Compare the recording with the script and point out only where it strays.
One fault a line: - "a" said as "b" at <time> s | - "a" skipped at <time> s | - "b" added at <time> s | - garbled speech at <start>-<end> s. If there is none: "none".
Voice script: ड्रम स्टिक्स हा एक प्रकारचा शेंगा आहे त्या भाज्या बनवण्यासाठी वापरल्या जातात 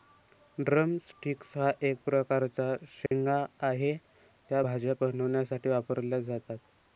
none